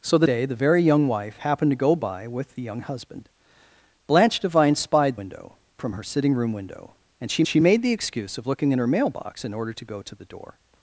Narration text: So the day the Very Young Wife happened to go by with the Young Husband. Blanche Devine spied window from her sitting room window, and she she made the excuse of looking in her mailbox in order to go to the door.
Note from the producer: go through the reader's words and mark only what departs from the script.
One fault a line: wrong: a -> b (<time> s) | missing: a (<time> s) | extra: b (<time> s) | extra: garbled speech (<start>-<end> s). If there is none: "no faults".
no faults